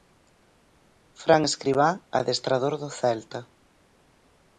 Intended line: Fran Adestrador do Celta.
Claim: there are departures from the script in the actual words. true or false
true